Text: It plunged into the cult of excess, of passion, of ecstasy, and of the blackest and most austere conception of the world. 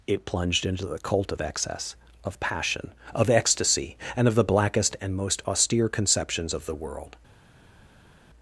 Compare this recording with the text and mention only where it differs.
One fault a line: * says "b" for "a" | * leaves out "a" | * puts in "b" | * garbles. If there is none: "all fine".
* says "conceptions" for "conception"